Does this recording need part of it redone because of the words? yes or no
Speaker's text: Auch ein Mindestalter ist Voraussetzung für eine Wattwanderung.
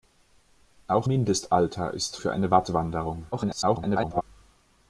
yes